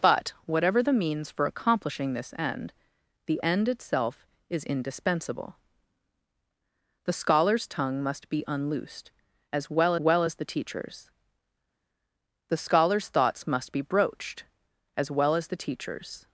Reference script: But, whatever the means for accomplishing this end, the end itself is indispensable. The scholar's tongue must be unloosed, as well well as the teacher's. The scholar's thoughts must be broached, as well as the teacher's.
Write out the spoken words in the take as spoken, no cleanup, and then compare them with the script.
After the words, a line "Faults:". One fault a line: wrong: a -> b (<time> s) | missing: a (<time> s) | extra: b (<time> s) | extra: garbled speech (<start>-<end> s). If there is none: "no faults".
But, whatever the means for accomplishing this end, the end itself is indispensable. The scholar's tongue must be unloosed, as well well as the teacher's. The scholar's thoughts must be broached, as well as the teacher's.
Faults:
no faults